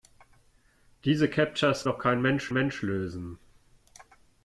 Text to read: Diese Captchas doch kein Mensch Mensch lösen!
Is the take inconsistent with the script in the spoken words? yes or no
no